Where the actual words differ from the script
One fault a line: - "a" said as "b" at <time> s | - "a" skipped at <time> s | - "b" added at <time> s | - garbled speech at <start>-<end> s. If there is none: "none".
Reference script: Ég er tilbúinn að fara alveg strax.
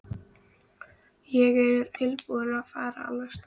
none